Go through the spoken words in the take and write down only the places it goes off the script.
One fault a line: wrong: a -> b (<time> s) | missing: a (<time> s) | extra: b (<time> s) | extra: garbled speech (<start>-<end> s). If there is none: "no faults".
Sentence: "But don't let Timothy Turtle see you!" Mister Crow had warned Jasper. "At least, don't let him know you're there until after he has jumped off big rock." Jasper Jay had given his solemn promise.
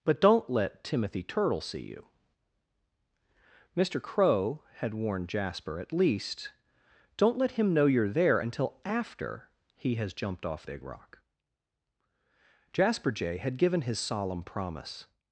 no faults